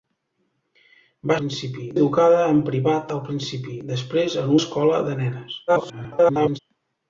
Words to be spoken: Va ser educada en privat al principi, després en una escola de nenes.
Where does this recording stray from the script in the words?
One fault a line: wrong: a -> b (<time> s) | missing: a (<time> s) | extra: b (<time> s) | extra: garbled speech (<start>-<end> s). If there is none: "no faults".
wrong: ser -> principi (1.4 s)
missing: una (4.5 s)
extra: garbled speech (5.7-6.6 s)